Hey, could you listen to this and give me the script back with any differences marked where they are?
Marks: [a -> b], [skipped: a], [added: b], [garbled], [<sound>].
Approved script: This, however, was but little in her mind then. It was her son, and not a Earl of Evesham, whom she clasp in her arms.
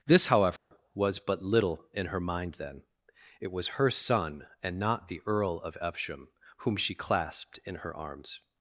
This, however, [dropout] was but little in her mind then. It was her son, and not [a -> the] Earl of Evesham, whom she [clasp -> clasped] in her arms.